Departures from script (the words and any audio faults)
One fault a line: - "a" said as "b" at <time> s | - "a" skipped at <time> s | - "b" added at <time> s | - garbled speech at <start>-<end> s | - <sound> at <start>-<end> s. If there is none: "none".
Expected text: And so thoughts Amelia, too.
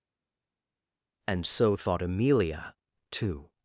- "thoughts" said as "thought" at 1.8 s